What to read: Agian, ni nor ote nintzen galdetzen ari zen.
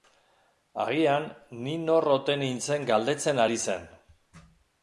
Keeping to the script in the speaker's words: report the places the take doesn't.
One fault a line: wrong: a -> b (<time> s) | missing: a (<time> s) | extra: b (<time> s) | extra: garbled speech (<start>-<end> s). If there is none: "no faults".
no faults